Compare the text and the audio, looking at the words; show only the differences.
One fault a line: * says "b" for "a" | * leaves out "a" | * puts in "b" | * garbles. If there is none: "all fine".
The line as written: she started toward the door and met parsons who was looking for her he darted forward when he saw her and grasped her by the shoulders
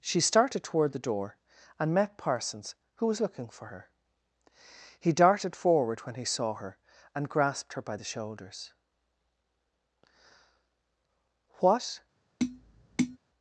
* puts in "what"